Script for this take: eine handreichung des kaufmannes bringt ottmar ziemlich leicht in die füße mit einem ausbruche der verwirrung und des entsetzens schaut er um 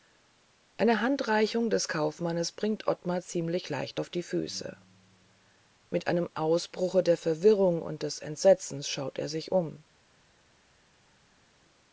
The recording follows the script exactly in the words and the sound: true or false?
false